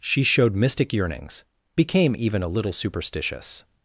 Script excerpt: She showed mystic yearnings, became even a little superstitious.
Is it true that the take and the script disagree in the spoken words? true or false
false